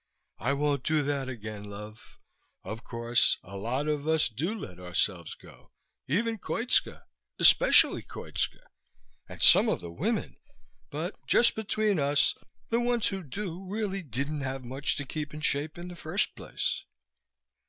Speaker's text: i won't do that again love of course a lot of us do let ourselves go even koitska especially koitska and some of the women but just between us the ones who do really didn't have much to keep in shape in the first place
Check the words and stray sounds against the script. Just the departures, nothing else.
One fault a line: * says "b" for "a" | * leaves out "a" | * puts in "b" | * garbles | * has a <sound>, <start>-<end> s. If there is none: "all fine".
all fine